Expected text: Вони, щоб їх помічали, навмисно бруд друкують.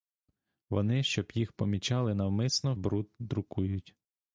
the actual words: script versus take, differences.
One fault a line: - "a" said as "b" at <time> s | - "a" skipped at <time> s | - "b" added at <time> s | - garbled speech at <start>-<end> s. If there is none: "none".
none